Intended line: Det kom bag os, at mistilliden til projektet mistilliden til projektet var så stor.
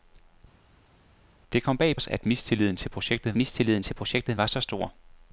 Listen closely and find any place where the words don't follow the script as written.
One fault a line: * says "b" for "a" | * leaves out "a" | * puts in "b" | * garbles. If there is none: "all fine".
all fine